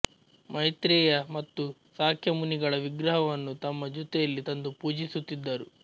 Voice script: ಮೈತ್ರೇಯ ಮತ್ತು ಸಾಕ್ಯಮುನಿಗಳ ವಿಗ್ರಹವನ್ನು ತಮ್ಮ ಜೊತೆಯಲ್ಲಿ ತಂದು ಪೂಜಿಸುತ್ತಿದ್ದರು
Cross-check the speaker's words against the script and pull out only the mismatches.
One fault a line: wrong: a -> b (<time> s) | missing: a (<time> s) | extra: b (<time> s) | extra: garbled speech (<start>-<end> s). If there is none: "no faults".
no faults